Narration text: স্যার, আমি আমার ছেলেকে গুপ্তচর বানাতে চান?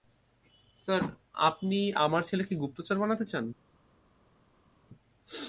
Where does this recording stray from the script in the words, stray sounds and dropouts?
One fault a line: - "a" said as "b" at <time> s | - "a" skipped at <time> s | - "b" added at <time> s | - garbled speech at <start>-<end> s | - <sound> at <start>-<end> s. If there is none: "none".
- "আমি" said as "আপনি" at 1.4 s